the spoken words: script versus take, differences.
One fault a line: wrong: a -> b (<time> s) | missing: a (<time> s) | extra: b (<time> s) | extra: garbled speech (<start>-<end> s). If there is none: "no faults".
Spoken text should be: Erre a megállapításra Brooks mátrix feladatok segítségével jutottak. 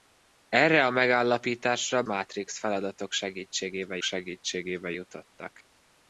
missing: Brooks (2.0 s)
extra: segítségével (4.0 s)